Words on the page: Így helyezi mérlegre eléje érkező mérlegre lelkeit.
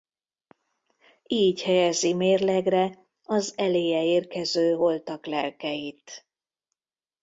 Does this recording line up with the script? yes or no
no